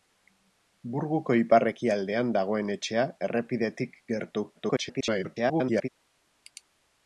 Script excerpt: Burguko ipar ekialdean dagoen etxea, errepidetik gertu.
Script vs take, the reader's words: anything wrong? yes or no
yes